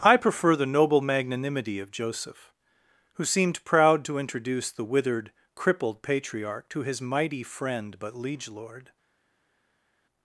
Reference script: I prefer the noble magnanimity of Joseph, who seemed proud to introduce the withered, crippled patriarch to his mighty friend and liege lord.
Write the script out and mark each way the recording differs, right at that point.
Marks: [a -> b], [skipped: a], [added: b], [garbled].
I prefer the noble magnanimity of Joseph, who seemed proud to introduce the withered, crippled patriarch to his mighty friend [and -> but] liege lord.